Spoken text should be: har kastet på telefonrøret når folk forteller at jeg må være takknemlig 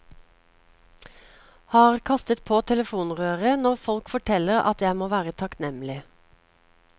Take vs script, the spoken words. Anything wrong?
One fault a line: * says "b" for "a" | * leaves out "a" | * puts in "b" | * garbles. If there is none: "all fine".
all fine